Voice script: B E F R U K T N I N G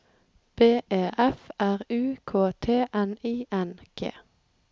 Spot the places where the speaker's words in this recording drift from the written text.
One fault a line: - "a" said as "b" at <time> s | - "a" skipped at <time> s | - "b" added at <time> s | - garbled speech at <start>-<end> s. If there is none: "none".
none